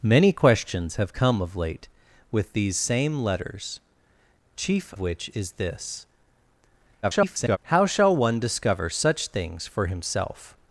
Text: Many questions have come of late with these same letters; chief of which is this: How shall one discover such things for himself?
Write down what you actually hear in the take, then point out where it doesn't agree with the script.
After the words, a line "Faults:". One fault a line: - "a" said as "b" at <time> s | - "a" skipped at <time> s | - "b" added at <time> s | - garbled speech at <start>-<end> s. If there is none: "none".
Many questions have come of late with these same letters; chief which is this: [garbled] How shall one discover such things for himself?
Faults:
- "of" skipped at 4.9 s
- garbled speech at 7.0-7.6 s